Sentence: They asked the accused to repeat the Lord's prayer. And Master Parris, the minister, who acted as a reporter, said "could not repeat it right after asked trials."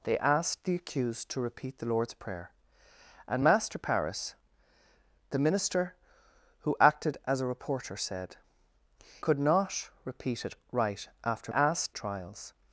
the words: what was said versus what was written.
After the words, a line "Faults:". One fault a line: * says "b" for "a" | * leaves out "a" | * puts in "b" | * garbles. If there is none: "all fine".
They asked the accused to repeat the Lord's prayer. And Master Parris, the minister, who acted as a reporter, said "could not repeat it right after asked trials."
Faults:
all fine